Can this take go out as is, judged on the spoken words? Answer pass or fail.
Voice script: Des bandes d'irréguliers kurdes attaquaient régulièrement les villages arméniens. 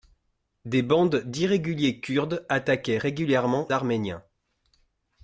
fail